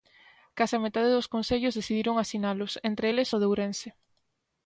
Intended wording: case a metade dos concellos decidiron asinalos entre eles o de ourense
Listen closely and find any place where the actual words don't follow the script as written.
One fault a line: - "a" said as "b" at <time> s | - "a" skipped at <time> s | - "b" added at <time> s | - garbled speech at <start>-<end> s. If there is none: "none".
none